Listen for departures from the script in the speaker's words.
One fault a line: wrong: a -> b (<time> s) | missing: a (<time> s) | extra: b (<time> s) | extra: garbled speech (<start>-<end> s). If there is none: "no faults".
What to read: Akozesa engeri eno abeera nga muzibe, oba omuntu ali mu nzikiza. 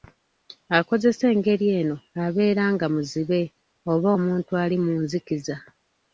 no faults